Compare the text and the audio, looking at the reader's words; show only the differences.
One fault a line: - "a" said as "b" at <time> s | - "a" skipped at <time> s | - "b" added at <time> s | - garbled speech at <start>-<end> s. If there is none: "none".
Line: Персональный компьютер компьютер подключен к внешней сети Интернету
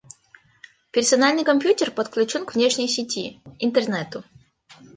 - "компьютер" skipped at 1.9 s